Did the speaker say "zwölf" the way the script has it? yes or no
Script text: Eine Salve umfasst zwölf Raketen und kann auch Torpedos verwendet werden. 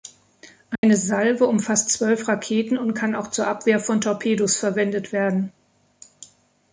yes